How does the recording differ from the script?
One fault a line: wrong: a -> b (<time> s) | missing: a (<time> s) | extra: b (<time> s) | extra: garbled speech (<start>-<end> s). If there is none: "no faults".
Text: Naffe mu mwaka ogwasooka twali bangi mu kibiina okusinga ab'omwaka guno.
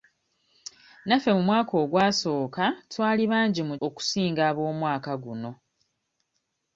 missing: kibiina (3.8 s)